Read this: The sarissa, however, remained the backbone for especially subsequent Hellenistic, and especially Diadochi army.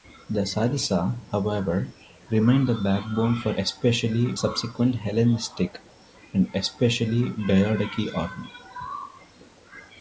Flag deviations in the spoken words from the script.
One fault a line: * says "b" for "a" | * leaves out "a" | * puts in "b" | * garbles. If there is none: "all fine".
all fine